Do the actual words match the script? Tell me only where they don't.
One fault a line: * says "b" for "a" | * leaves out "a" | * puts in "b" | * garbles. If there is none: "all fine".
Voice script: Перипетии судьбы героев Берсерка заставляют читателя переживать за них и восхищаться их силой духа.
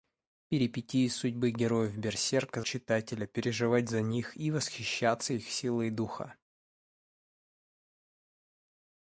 * leaves out "заставляют"